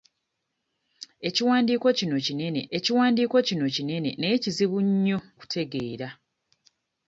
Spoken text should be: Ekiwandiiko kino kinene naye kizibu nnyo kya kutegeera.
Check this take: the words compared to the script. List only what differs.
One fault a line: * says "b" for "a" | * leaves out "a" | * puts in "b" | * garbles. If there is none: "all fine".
* puts in "ekiwandiiko kino kinene"
* leaves out "kya"